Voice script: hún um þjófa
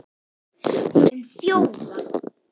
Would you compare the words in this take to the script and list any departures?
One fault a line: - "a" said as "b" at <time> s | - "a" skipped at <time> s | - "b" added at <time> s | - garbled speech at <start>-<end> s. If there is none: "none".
none